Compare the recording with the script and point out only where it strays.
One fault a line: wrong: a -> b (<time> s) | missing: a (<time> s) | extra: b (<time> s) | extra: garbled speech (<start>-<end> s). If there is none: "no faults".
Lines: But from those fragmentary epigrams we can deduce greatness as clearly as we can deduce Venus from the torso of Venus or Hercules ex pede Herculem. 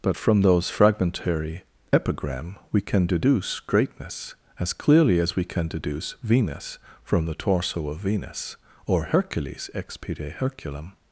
wrong: epigrams -> epigram (1.9 s)